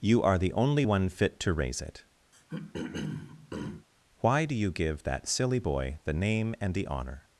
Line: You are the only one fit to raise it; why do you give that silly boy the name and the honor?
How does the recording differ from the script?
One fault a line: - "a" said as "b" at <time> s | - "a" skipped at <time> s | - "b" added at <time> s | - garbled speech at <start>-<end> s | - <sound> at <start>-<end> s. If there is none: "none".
- throat clearing at 2.3-3.9 s